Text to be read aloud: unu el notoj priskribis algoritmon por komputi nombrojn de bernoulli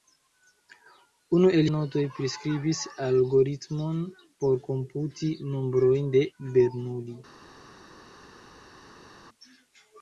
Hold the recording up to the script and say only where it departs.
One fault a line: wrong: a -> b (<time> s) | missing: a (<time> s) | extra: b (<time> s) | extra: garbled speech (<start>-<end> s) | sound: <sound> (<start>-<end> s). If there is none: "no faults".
no faults